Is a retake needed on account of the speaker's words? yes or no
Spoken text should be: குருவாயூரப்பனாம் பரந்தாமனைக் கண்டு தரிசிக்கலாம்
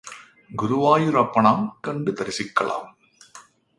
yes